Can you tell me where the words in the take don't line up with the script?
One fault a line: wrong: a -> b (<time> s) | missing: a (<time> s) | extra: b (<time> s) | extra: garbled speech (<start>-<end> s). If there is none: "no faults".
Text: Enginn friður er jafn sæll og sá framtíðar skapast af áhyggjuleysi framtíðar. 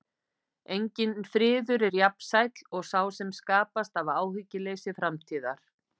wrong: framtíðar -> sem (3.2 s)